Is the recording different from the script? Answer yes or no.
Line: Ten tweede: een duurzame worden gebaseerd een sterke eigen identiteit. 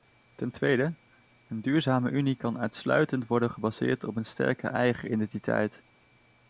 yes